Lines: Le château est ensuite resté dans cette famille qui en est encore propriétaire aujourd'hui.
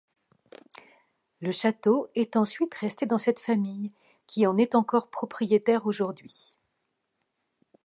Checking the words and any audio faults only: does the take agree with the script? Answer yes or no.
yes